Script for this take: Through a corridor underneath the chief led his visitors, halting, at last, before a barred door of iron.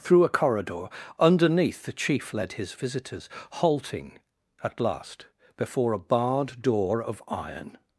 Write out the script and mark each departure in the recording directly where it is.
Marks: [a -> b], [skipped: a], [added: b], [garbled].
Through a corridor underneath the chief led his visitors, halting, at last, before a barred door of iron.